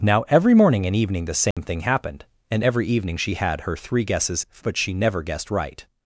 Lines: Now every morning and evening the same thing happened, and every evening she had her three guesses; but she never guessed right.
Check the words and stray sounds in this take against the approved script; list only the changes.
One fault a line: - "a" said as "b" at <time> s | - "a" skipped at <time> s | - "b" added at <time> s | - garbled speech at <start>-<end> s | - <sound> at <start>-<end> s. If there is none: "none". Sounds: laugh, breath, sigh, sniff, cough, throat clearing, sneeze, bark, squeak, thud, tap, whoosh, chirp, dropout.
- dropout at 1.5-1.6 s